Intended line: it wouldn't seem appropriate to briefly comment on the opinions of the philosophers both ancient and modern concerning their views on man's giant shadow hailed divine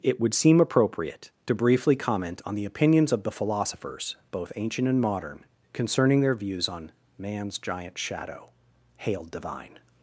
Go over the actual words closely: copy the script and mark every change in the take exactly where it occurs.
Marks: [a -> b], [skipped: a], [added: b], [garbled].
it [wouldn't -> would] seem appropriate to briefly comment on the opinions of the philosophers both ancient and modern concerning their views on man's giant shadow hailed divine